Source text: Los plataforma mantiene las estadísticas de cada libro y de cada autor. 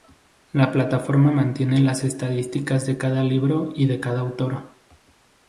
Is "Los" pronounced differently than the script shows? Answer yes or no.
yes